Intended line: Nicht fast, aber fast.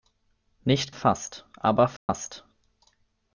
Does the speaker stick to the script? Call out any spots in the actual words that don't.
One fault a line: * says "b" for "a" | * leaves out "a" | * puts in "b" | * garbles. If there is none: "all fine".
all fine